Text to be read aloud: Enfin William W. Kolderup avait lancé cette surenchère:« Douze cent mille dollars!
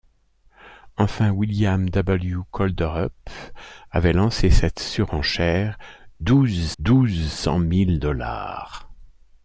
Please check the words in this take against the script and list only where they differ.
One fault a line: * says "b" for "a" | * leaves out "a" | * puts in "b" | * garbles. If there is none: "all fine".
* puts in "Douze"